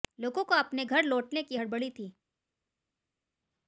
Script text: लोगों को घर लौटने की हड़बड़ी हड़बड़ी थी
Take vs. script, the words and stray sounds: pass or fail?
fail